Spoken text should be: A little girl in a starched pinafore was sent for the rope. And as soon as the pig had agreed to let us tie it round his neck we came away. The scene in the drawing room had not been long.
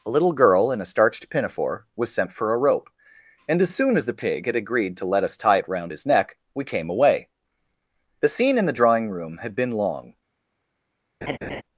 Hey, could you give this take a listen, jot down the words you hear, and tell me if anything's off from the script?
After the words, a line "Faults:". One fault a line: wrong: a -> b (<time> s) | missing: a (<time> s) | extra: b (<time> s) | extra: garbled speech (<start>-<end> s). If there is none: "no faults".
A little girl in a starched pinafore was sent for a rope. And as soon as the pig had agreed to let us tie it round his neck we came away. The scene in the drawing room had been long.
Faults:
wrong: the -> a (2.5 s)
missing: not (9.5 s)